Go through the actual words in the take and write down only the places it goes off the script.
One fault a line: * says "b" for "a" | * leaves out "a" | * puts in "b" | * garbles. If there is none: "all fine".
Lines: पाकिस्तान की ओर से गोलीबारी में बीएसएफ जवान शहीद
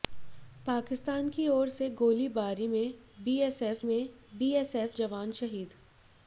* puts in "में बीएसएफ"